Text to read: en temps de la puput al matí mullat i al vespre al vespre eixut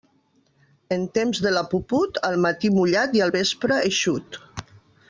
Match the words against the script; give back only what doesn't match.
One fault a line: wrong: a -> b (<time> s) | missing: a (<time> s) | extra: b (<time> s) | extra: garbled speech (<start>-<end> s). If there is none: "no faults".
missing: al vespre (3.8 s)